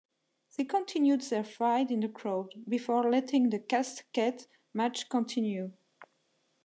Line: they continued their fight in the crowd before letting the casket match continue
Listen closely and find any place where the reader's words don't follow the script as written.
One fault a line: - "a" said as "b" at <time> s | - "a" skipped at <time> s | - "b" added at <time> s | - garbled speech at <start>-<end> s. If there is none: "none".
none